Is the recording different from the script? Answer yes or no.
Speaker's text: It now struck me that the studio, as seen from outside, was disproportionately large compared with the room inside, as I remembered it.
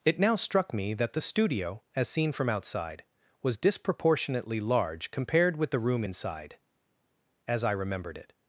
no